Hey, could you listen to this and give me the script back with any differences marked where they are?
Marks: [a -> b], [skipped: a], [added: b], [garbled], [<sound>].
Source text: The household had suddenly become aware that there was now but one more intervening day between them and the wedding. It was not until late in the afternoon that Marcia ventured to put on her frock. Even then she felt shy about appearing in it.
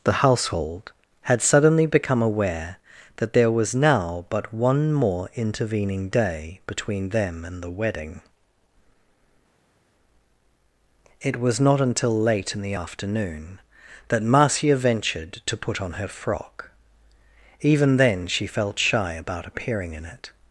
The household had suddenly become aware that there was now but one more intervening day between them and the wedding. It was not until late in the afternoon that Marcia ventured to put on her frock. Even then she felt shy about appearing in it.